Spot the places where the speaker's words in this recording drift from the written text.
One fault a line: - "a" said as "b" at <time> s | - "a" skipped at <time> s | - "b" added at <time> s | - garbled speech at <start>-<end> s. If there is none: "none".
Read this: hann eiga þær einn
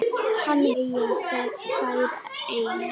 none